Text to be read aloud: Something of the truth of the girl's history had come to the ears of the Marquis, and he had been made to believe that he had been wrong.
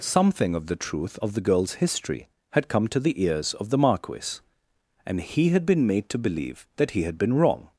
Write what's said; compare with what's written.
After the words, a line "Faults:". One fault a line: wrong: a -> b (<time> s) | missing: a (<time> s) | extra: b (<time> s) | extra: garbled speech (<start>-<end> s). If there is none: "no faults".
Something of the truth of the girl's history had come to the ears of the Marquis, and he had been made to believe that he had been wrong.
Faults:
no faults